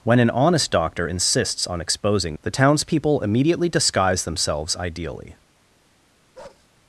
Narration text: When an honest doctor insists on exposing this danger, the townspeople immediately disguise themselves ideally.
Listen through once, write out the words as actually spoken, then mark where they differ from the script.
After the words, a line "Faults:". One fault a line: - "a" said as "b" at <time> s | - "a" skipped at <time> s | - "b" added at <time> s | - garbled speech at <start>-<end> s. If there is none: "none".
When an honest doctor insists on exposing the townspeople immediately disguise themselves ideally.
Faults:
- "this danger" skipped at 2.4 s